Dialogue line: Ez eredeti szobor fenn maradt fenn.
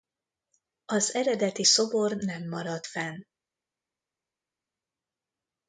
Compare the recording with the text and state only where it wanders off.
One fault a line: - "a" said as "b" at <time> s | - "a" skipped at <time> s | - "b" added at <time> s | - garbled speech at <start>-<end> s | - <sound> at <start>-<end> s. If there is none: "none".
- "Ez" said as "Az" at 0.8 s
- "fenn" said as "nem" at 2.2 s